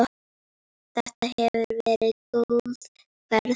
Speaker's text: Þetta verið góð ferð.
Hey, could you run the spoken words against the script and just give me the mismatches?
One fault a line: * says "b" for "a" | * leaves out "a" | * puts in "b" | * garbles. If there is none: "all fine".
* puts in "hefur"